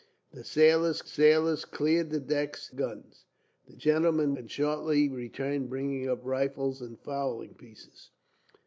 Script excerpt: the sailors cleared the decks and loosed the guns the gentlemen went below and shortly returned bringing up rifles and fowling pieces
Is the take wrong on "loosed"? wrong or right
wrong